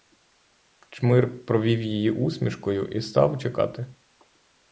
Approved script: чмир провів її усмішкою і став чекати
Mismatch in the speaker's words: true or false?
false